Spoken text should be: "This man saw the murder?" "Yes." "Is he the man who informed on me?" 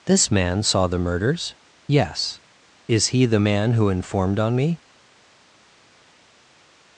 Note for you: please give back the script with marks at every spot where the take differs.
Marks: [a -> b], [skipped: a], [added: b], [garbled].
"This man saw the [murder?" -> murders] "Yes." "Is he the man who informed on me?"